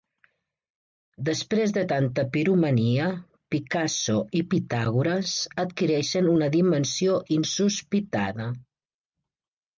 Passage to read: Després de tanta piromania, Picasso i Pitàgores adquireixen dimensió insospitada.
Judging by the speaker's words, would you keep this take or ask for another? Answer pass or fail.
fail